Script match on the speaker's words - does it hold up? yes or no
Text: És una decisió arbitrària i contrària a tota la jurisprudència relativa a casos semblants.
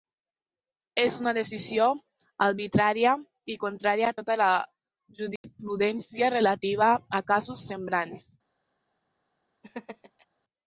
yes